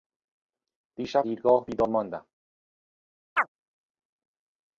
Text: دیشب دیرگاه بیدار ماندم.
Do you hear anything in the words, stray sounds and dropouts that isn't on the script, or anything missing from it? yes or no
yes